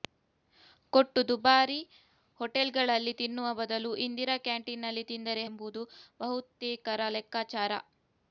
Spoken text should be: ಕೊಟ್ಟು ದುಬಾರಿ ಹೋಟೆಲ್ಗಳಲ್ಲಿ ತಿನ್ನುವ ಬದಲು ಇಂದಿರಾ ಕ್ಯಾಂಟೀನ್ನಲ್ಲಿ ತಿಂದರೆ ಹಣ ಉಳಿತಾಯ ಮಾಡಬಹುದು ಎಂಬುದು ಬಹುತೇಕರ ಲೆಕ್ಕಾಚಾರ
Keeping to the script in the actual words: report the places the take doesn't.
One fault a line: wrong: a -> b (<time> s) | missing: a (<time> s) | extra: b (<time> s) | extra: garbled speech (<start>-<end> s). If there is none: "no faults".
missing: ಹಣ ಉಳಿತಾಯ ಮಾಡಬಹುದು (5.4 s)